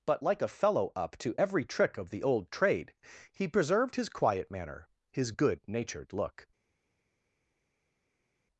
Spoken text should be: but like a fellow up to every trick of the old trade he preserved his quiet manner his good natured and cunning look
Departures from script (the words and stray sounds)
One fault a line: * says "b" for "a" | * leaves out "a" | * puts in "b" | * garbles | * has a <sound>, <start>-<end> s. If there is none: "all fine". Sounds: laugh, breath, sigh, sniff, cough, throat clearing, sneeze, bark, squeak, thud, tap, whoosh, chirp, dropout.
* leaves out "and cunning"